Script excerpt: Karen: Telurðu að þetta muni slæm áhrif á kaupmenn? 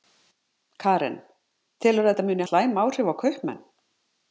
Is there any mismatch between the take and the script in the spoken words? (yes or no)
no